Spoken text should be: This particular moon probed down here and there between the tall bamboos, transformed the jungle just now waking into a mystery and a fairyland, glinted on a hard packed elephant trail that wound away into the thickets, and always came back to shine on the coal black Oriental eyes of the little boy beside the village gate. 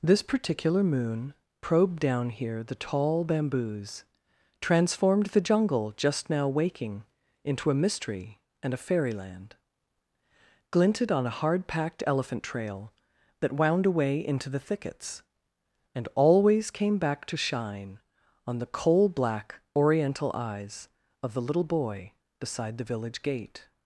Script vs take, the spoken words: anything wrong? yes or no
yes